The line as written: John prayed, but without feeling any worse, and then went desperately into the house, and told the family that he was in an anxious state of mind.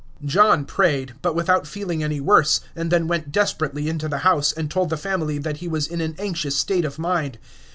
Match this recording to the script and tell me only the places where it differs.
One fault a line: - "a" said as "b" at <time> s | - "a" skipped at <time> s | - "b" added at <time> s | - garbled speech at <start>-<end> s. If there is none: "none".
none